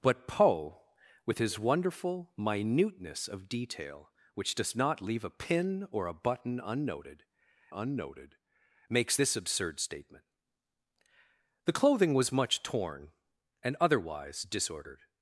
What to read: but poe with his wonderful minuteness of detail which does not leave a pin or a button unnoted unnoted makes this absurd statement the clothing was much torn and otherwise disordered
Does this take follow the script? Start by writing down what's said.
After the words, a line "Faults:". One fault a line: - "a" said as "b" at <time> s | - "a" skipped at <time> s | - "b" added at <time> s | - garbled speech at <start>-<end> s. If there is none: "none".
but poe with his wonderful minuteness of detail which does not leave a pin or a button unnoted unnoted makes this absurd statement the clothing was much torn and otherwise disordered
Faults:
none